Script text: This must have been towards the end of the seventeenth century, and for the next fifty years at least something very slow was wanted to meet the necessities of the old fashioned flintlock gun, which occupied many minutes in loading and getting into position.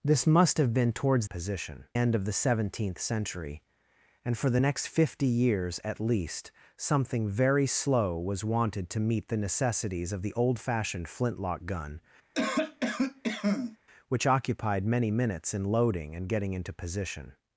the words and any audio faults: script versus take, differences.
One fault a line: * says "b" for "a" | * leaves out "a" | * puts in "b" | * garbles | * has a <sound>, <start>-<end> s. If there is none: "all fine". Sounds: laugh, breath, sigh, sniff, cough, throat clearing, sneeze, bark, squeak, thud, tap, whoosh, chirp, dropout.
* says "position" for "the"
* has a cough, 12.3-13.8 s